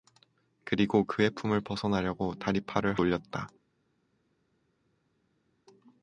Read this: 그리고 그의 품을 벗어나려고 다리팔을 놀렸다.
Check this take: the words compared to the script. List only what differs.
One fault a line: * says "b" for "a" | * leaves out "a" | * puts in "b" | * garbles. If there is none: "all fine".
all fine